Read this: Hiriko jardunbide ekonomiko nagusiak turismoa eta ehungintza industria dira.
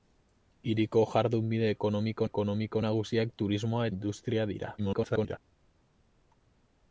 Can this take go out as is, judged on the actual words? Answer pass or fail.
fail